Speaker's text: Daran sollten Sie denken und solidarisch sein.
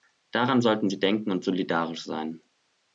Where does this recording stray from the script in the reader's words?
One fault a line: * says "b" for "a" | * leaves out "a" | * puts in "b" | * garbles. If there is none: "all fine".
all fine